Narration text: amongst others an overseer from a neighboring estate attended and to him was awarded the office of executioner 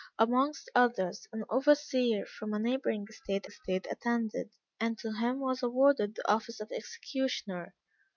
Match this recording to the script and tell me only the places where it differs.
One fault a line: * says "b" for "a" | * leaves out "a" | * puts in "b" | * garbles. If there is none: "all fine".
* puts in "estate"